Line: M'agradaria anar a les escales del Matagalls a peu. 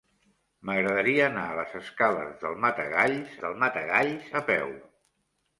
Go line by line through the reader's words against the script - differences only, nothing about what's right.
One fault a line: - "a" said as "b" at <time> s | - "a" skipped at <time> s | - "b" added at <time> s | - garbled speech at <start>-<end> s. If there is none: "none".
- "del Matagalls" added at 3.4 s